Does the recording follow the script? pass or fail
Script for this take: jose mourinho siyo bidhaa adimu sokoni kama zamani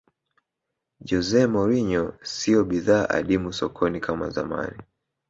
pass